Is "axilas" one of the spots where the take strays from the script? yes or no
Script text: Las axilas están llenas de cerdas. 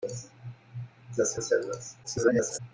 yes